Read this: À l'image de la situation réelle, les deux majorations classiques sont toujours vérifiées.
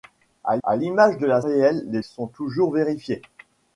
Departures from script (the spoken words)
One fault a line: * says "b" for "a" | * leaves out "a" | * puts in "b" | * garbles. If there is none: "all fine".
* puts in "à"
* leaves out "situation"
* leaves out "deux majorations classiques"